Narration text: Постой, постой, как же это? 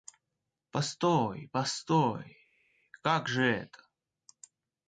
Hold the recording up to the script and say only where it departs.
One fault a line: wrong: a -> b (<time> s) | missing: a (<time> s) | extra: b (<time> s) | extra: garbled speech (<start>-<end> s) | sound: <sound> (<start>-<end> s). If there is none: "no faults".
no faults